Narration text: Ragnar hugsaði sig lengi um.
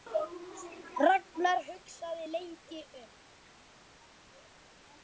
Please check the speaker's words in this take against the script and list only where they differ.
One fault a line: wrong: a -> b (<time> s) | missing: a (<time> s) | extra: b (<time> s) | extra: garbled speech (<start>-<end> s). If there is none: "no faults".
no faults